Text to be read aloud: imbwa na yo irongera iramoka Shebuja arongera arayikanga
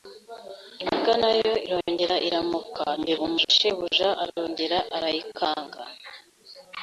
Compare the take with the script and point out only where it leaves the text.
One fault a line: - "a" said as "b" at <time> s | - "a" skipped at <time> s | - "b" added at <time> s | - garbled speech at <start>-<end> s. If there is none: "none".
- garbled speech at 3.0-3.5 s